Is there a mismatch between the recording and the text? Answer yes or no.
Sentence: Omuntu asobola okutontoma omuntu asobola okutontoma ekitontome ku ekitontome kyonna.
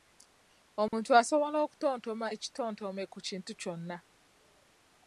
yes